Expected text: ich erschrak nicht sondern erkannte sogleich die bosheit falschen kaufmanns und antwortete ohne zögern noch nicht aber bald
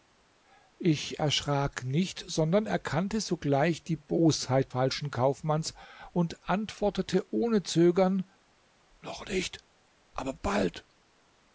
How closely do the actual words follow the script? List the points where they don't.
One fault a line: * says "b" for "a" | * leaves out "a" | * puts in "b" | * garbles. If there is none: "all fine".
all fine